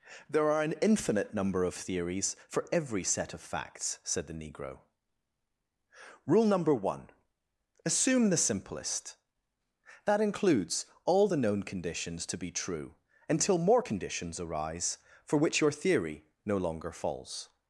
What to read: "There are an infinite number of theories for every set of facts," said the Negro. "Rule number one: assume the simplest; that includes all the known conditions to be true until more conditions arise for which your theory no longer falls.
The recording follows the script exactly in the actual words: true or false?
true